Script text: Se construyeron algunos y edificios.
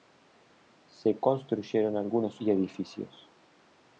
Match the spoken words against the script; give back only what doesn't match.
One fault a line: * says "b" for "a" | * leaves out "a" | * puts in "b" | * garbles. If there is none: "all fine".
all fine